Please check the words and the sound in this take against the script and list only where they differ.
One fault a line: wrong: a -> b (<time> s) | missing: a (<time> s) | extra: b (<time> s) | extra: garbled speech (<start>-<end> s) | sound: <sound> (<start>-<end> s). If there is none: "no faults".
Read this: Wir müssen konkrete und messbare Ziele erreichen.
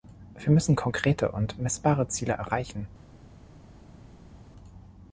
no faults